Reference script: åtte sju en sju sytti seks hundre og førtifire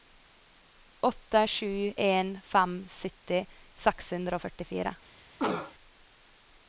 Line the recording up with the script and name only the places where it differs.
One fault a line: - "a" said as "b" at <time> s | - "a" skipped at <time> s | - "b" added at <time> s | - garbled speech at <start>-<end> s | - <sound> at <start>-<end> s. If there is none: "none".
- "sju" said as "fem" at 2.5 s
- cough at 5.4-5.7 s